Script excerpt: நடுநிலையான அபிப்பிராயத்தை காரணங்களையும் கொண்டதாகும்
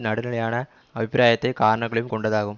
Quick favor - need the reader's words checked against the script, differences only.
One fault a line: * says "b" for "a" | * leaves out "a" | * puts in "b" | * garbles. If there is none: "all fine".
all fine